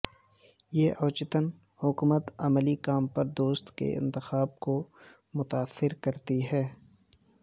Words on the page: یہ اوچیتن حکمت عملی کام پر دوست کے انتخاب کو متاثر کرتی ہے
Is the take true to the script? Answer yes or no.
yes